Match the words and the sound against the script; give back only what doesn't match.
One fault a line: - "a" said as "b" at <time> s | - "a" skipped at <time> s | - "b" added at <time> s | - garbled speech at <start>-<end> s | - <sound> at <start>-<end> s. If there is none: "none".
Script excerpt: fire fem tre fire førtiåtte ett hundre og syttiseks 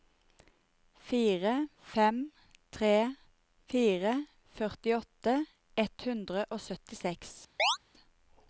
- chirp at 7.6-7.8 s